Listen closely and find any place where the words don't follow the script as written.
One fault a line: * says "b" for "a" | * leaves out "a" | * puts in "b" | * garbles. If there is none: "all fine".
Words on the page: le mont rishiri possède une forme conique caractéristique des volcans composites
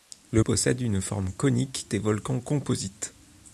* leaves out "mont rishiri"
* leaves out "caractéristique"